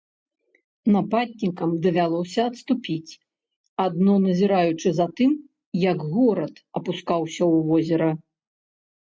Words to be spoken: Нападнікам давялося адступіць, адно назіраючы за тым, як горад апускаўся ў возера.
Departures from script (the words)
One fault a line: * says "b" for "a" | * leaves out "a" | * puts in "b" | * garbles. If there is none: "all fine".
all fine